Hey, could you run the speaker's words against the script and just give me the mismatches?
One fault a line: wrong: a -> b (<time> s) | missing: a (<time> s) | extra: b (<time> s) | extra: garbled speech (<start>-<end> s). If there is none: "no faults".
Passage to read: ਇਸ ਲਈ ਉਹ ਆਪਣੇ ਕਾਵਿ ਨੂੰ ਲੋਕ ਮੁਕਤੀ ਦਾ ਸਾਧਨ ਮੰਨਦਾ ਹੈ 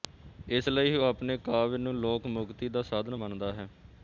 no faults